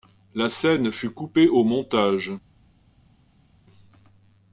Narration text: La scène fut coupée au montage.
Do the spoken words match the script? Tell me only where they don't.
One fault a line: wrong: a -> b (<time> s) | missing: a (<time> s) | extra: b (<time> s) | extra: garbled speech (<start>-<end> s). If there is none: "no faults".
no faults